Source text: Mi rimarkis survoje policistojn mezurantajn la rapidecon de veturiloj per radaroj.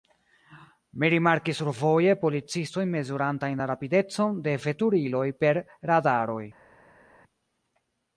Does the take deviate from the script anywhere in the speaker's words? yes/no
no